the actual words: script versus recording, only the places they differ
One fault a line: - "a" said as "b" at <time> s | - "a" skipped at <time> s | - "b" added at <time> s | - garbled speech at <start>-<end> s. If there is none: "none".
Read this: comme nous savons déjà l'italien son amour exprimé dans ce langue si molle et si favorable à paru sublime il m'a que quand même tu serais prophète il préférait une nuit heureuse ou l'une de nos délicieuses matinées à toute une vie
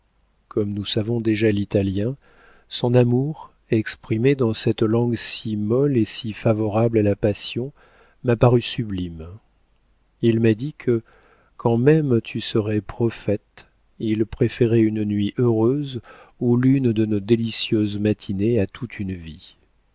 - "ce" said as "cette" at 4.5 s
- "la passion m'a" added at 7.0 s
- "dit" added at 10.6 s